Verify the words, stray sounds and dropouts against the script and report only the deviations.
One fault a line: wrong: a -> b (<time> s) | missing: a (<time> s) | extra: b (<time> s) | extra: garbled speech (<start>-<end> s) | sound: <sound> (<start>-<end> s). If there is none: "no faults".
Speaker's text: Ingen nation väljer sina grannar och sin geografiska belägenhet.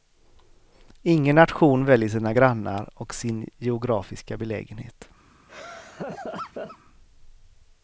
sound: laugh (5.5-6.8 s)